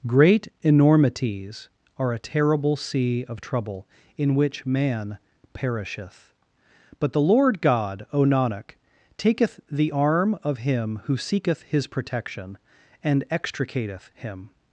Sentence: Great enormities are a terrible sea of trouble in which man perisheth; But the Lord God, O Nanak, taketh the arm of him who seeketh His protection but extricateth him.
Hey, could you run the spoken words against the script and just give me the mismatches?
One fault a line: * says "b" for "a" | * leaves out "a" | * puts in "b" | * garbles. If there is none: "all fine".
* says "and" for "but"